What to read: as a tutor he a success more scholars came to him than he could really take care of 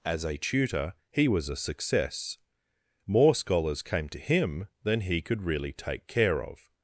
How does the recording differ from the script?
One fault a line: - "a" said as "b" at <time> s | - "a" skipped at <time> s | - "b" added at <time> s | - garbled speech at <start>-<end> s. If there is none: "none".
- "was" added at 1.3 s